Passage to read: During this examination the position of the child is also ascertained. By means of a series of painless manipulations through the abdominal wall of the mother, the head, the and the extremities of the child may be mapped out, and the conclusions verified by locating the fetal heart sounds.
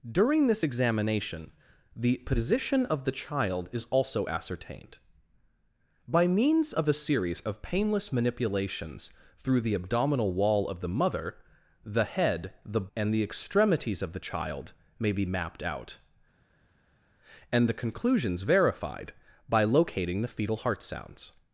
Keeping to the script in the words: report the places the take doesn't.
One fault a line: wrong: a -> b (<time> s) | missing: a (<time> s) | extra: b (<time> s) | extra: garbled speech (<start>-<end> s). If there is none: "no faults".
no faults